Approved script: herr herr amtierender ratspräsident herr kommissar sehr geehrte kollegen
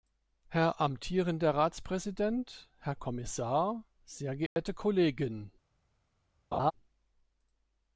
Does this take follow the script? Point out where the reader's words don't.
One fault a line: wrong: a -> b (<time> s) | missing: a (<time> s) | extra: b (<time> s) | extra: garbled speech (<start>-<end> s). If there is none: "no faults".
missing: herr (0.8 s)